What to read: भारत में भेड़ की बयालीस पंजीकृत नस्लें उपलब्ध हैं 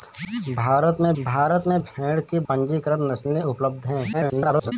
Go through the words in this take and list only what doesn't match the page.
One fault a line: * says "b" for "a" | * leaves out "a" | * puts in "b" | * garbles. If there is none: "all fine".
* puts in "भारत में"
* leaves out "बयालीस"
* garbles